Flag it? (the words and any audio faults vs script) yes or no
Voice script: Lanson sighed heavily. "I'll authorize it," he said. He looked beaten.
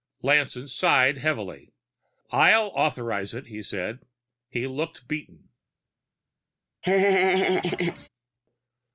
yes